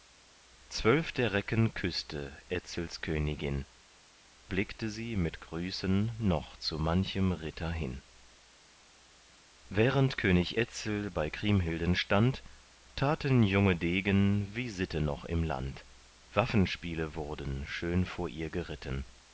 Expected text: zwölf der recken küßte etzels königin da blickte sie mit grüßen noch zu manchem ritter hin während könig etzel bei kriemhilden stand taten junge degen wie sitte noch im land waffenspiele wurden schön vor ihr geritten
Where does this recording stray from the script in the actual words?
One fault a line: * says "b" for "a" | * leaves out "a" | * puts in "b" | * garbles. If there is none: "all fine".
* leaves out "da"